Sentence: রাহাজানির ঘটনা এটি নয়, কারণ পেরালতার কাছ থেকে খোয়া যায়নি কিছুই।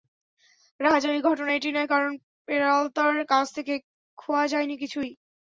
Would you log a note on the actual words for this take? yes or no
no